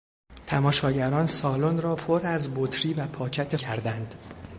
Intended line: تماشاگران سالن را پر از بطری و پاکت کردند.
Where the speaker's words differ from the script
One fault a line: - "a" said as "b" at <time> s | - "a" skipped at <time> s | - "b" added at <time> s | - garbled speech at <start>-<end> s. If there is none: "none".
none